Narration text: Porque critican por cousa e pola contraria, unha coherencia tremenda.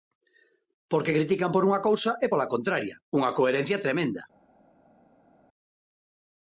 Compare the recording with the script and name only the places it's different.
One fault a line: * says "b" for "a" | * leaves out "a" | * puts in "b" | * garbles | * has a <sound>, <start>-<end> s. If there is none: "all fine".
* puts in "unha"